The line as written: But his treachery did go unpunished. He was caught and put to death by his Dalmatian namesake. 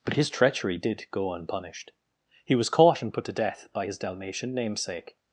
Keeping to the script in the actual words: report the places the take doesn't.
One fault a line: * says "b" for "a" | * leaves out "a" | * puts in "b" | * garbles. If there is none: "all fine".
all fine